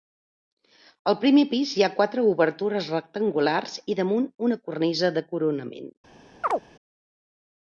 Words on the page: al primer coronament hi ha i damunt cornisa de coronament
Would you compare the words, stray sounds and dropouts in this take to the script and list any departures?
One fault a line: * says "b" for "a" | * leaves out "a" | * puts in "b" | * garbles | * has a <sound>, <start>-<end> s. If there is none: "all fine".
* says "pis" for "coronament"
* puts in "quatre obertures rectangulars"
* puts in "una"
* has a chirp, 6.4-6.6 s